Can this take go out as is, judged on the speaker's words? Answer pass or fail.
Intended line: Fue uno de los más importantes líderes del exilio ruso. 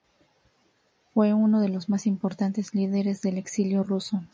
pass